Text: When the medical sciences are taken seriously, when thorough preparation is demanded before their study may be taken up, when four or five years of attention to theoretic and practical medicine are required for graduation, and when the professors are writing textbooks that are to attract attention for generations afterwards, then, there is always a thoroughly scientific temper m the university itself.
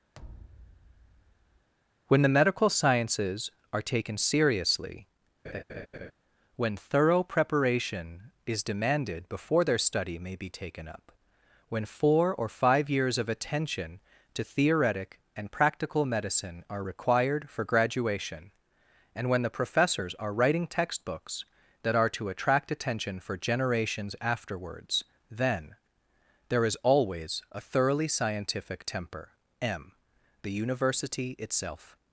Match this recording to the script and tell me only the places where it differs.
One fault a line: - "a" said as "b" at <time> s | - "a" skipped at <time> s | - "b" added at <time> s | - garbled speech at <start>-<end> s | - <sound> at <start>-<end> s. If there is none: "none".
- thud at 0.1-1.7 s
- laugh at 5.4-6.1 s